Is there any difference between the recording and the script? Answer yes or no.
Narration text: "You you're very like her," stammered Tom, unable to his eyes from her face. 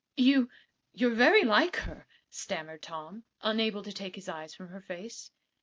yes